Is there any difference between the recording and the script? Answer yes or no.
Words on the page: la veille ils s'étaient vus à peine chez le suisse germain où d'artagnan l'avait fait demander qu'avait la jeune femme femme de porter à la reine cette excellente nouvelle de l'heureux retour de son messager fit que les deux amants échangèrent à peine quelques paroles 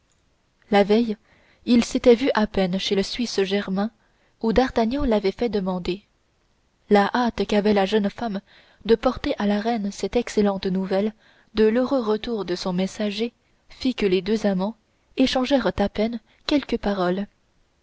yes